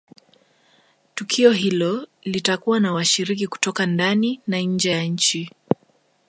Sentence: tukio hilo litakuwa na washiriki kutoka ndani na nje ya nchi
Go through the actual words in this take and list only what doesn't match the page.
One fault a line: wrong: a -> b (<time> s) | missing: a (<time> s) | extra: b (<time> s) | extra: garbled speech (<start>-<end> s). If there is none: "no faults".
no faults